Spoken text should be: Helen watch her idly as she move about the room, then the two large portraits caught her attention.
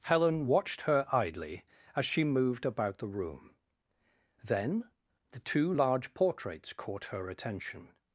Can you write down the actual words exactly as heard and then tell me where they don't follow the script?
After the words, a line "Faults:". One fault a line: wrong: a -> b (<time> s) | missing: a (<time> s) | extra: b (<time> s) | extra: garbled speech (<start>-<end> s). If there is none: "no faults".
Helen watched her idly as she moved about the room, then the two large portraits caught her attention.
Faults:
wrong: watch -> watched (0.5 s)
wrong: move -> moved (2.2 s)